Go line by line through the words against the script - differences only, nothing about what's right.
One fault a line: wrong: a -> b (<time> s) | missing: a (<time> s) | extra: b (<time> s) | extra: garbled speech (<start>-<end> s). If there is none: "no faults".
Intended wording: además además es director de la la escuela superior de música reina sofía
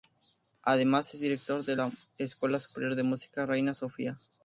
missing: además (1.1 s)
missing: la (1.9 s)